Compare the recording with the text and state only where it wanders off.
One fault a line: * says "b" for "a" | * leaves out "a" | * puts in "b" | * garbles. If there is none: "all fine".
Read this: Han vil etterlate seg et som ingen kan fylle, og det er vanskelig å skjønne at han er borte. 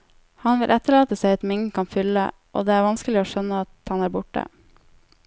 all fine